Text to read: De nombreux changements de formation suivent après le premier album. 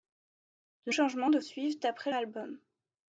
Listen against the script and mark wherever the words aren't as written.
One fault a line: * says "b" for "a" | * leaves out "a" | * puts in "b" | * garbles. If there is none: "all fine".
* leaves out "nombreux"
* leaves out "formation"
* leaves out "le premier"